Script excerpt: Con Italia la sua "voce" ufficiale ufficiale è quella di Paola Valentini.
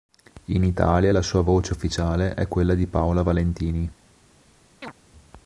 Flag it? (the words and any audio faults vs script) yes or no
yes